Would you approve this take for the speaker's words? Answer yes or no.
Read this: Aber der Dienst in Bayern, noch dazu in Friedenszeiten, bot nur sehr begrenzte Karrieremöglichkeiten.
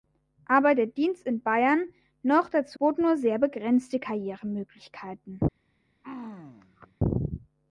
no